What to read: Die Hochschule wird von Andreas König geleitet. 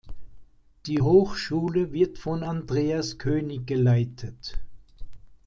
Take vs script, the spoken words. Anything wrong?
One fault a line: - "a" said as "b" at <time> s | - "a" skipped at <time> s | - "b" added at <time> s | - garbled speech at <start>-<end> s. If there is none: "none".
none